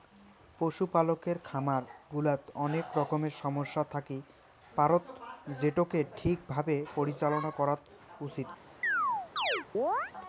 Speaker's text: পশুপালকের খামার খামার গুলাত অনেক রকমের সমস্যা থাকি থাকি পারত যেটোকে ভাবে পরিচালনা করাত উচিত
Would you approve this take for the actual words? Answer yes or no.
no